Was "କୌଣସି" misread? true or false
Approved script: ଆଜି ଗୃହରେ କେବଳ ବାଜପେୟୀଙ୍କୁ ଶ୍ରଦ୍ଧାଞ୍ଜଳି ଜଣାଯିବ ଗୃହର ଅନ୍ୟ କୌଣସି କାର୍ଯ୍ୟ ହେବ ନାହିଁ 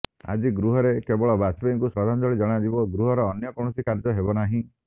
false